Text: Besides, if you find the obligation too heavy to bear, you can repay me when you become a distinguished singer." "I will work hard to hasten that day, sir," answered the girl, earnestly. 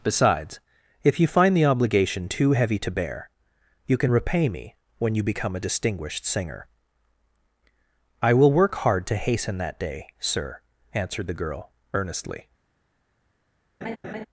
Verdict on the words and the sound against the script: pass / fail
fail